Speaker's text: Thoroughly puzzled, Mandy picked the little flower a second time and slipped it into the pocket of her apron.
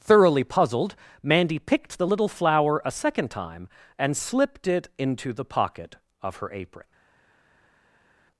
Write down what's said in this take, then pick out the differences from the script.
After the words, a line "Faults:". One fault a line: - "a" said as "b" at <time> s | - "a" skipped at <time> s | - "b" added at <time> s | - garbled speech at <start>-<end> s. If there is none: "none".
Thoroughly puzzled, Mandy picked the little flower a second time and slipped it into the pocket of her apron.
Faults:
none